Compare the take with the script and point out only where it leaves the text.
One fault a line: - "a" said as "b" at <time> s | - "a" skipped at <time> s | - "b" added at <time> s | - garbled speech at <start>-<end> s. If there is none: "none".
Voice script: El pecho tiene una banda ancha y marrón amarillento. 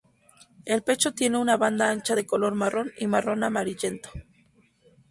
- "de color marrón" added at 2.1 s